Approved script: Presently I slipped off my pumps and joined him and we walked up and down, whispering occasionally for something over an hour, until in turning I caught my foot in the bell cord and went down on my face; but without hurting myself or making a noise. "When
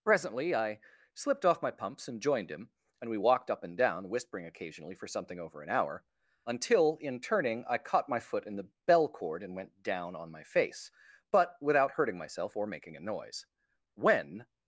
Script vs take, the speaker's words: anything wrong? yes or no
no